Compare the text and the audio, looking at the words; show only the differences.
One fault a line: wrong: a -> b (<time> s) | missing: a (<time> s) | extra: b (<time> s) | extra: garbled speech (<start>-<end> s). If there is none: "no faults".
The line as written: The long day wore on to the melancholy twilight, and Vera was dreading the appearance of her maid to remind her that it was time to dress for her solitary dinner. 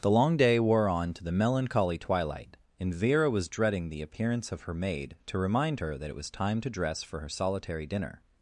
no faults